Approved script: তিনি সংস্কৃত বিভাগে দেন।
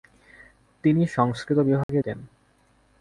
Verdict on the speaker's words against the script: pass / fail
pass